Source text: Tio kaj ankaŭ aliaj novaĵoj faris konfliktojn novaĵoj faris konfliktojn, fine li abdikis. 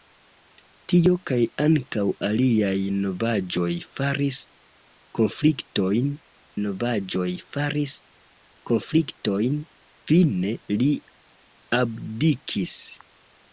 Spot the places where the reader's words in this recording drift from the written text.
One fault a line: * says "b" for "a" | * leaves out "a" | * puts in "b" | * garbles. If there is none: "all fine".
all fine